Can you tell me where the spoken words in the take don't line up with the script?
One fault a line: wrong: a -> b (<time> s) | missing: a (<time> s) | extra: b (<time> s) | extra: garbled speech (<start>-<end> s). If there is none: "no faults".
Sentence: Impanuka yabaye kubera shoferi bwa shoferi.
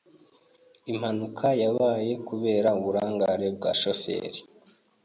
wrong: shoferi -> uburangare (2.8 s)